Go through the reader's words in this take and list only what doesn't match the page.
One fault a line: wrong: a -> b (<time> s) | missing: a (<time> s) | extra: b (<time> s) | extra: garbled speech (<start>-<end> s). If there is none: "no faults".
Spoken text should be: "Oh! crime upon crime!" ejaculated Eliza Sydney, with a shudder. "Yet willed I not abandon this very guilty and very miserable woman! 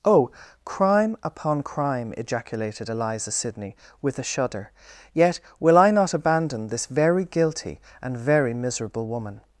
wrong: willed -> will (5.6 s)